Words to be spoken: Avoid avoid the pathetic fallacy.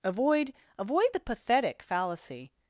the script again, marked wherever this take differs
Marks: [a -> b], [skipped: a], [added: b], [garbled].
Avoid avoid the pathetic fallacy.